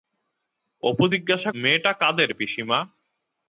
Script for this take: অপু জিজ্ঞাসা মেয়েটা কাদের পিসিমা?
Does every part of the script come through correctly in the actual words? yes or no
yes